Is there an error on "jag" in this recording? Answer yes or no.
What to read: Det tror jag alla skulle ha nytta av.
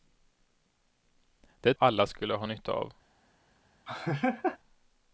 yes